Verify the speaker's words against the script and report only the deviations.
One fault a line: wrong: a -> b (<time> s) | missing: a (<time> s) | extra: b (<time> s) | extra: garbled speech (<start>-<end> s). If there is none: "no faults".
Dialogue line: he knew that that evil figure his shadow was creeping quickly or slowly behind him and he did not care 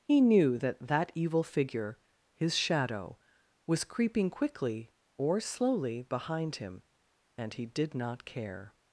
no faults